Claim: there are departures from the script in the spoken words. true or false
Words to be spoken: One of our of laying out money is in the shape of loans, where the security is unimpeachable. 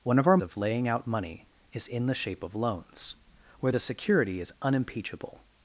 false